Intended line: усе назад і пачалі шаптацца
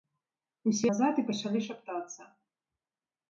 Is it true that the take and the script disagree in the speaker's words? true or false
false